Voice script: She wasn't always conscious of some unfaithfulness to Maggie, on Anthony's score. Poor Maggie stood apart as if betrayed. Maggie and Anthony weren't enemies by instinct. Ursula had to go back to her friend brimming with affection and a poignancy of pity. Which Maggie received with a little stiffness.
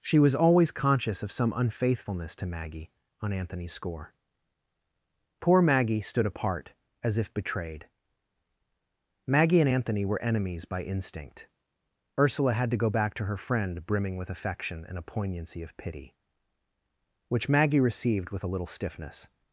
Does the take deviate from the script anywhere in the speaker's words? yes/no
yes